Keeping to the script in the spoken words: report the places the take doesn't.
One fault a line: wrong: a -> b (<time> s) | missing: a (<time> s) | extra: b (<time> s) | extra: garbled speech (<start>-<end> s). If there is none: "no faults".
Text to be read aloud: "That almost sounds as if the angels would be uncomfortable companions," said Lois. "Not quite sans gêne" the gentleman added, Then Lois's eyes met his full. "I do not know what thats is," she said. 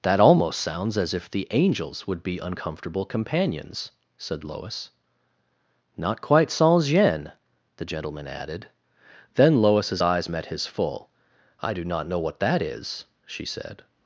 wrong: thats -> that (12.4 s)